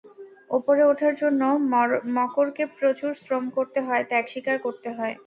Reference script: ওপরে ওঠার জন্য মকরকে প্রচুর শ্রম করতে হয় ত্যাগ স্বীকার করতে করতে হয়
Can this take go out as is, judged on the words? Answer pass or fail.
fail